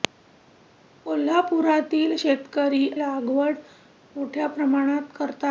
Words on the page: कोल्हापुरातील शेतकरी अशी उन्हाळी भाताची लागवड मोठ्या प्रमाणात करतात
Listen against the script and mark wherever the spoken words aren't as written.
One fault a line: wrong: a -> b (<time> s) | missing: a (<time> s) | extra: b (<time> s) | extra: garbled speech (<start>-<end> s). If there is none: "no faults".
missing: अशी उन्हाळी भाताची (2.9 s)